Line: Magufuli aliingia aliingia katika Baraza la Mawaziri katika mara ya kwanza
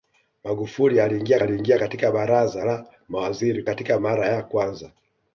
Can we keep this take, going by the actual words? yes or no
yes